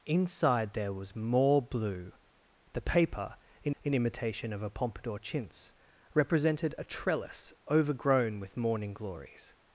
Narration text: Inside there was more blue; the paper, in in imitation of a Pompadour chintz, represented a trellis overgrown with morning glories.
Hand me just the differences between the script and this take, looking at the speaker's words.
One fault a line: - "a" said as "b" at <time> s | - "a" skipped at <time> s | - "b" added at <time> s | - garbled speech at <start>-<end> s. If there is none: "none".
none